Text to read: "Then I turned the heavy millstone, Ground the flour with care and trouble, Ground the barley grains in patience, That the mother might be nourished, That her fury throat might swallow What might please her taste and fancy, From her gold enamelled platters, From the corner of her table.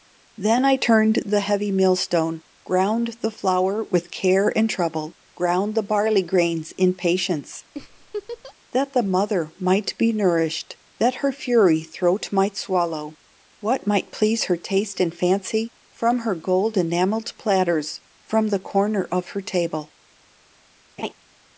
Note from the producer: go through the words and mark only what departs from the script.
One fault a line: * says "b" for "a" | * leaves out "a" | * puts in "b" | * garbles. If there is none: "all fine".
all fine